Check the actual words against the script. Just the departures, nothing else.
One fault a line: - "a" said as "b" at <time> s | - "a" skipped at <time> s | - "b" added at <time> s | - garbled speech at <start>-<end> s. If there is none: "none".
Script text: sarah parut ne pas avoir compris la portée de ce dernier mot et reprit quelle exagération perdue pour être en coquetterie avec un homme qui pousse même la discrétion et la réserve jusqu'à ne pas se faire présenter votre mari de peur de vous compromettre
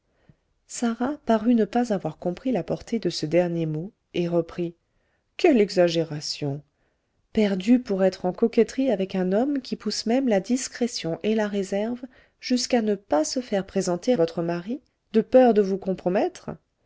none